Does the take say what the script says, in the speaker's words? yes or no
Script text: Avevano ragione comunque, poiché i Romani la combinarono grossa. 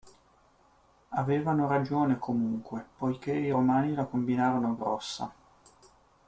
yes